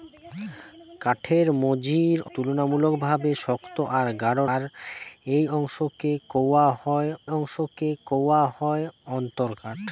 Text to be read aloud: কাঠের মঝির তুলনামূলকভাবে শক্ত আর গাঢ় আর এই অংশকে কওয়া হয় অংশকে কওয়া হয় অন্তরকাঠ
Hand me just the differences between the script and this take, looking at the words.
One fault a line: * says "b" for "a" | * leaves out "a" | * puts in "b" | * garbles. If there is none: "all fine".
all fine